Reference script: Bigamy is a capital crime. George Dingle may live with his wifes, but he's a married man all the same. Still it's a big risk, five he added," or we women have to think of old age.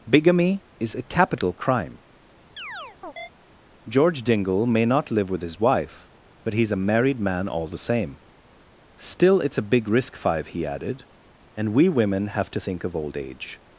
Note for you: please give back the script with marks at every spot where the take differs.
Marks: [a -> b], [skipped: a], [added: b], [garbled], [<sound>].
Bigamy is a capital crime. [chirp] George Dingle may [added: not] live with his [wifes, -> wife] but he's a married man all the same. Still it's a big risk, five he added," [or -> and] we women have to think of old age.